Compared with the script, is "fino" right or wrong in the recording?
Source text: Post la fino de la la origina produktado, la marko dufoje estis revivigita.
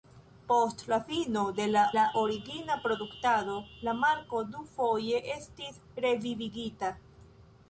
right